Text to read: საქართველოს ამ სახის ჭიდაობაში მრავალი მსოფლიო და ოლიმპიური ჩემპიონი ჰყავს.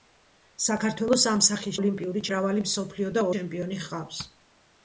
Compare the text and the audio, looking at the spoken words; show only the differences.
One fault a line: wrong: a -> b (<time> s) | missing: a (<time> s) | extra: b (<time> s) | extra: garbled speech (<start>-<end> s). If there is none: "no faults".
wrong: ჭიდაობაში -> ოლიმპიური (1.8 s)
missing: ოლიმპიური (3.3 s)